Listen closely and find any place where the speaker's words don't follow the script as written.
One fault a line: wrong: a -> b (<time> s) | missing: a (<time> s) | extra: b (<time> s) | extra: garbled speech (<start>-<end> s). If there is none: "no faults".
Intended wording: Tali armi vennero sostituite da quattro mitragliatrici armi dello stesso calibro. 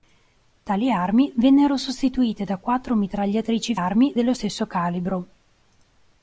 no faults